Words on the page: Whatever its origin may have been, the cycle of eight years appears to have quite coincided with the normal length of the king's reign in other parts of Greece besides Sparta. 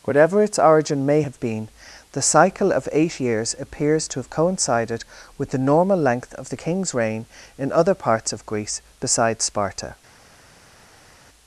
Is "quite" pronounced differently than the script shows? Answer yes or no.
yes